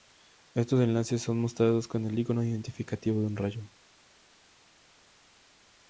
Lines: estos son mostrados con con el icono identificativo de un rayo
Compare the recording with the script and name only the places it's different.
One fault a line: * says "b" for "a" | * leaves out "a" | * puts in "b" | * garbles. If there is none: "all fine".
* puts in "enlaces"
* leaves out "con"